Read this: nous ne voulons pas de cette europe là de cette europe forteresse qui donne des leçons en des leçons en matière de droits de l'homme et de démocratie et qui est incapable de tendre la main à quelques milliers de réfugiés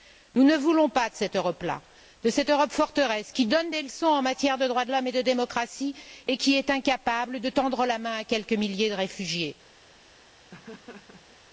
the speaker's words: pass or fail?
fail